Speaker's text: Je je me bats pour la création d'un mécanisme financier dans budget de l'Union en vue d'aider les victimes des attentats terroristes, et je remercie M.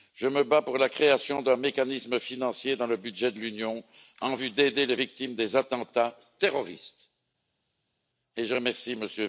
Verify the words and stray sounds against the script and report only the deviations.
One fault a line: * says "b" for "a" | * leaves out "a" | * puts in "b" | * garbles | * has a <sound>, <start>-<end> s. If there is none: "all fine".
* leaves out "je"
* puts in "le"